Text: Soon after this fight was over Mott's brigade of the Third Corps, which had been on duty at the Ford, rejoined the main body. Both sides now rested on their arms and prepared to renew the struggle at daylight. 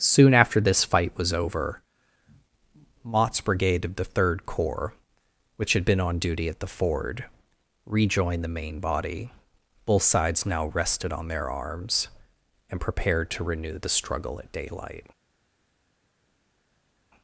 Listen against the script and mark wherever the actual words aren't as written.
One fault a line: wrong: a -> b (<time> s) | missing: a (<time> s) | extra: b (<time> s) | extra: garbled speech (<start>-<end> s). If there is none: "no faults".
no faults